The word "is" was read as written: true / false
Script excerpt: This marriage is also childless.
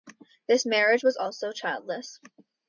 false